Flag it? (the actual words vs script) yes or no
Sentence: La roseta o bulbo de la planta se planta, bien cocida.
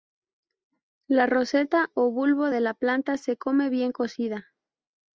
yes